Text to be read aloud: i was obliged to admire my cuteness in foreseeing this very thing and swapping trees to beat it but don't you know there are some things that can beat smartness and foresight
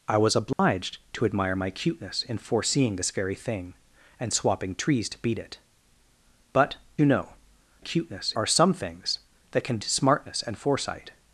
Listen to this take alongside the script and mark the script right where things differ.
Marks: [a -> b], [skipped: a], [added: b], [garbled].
i was obliged to admire my cuteness in foreseeing this very thing and swapping trees to beat it but [skipped: don't] you know [there -> cuteness] are some things that can [skipped: beat] smartness and foresight